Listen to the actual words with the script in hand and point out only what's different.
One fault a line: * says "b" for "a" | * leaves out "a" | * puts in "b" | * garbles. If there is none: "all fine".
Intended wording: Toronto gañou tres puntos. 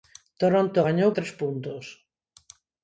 all fine